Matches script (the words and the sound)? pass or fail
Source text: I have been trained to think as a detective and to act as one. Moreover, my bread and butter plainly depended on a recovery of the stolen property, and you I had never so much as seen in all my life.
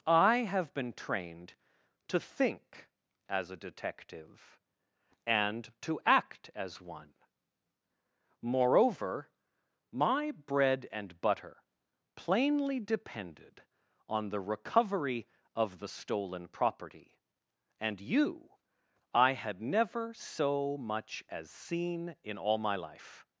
fail